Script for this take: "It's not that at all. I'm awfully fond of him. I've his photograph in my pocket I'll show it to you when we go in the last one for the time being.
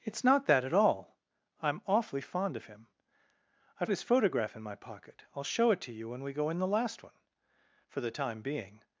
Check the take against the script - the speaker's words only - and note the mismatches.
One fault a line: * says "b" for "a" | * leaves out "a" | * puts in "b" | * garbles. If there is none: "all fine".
all fine